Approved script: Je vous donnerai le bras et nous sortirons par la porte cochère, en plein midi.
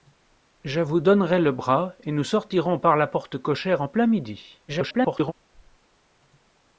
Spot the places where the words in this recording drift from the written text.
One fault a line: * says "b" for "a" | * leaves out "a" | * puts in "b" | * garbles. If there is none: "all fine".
* garbles